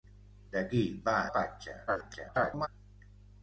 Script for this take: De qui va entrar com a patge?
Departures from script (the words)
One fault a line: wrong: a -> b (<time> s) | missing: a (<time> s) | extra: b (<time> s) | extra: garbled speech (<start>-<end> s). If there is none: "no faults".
missing: entrar com (1.2 s)
extra: garbled speech (1.9-2.7 s)